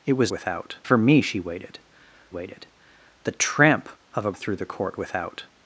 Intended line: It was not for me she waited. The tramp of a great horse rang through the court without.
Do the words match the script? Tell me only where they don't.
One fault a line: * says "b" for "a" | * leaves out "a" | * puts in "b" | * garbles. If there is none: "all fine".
* says "without" for "not"
* puts in "waited"
* leaves out "great horse rang"